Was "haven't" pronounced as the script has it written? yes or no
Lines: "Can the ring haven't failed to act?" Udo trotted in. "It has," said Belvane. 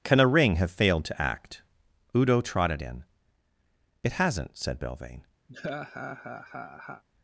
no